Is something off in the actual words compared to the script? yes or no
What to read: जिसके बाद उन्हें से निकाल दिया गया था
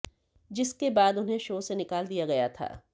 yes